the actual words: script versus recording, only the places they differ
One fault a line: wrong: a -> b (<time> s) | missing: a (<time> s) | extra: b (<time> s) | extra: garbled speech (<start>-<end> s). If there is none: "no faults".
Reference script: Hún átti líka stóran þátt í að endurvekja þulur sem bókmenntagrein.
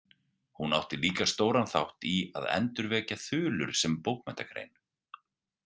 no faults